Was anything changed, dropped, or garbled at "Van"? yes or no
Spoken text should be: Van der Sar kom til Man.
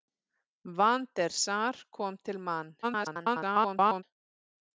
no